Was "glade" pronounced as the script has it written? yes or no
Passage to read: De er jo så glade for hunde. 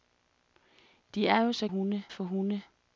no